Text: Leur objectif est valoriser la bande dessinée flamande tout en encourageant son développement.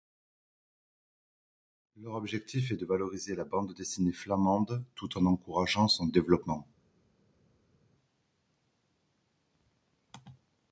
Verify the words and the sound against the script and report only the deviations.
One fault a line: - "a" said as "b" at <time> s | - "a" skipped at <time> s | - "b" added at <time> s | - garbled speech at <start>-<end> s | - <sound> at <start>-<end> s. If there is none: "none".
- "de" added at 2.8 s